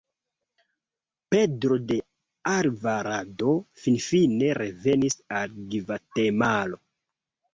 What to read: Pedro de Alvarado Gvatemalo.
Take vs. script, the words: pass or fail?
fail